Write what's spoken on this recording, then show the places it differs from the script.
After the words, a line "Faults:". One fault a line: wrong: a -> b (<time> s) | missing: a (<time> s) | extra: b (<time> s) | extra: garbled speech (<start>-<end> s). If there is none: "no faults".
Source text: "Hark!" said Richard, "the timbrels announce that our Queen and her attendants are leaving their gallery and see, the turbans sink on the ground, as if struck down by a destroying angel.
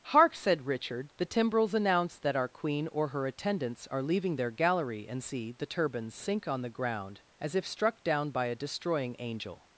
"Hark!" said Richard, "the timbrels announce that our Queen or her attendants are leaving their gallery and see, the turbans sink on the ground, as if struck down by a destroying angel.
Faults:
wrong: and -> or (2.9 s)